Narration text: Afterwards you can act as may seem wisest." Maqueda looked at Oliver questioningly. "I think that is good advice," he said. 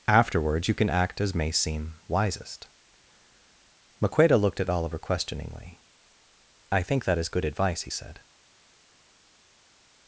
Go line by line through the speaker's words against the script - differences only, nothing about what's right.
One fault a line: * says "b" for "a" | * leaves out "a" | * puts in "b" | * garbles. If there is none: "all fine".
all fine